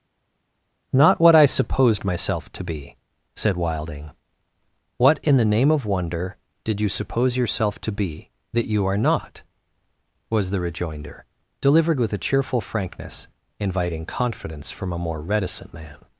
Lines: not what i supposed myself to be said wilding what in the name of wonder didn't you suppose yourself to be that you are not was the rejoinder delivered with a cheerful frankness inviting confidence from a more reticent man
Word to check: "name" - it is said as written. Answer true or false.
true